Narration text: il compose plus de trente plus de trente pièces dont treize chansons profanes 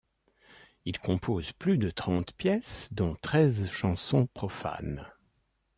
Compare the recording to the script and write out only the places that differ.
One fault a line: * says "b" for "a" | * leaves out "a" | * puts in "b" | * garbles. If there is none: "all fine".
* leaves out "plus de trente"